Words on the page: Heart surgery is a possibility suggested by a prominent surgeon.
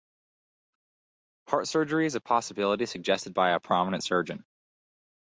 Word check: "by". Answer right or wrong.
right